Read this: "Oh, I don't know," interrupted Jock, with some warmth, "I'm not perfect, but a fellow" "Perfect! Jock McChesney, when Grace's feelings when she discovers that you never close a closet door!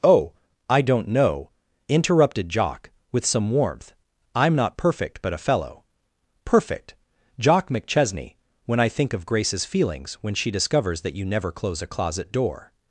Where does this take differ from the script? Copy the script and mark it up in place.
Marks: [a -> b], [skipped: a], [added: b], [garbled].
"Oh, I don't know," interrupted Jock, with some warmth, "I'm not perfect, but a fellow" "Perfect! Jock McChesney, when [added: I think of] Grace's feelings when she discovers that you never close a closet door!